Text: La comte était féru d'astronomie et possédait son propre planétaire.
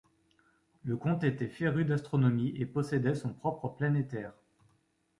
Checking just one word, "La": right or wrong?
wrong